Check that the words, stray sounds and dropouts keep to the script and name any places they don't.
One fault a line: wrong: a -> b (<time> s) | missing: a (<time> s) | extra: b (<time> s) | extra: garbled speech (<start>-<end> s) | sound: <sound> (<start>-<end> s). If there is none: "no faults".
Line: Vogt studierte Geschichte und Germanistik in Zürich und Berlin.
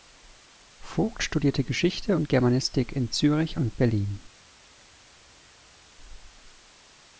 no faults